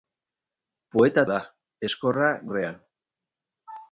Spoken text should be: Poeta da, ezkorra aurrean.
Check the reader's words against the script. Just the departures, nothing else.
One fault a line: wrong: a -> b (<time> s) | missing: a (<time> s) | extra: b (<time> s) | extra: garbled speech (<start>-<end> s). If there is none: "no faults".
no faults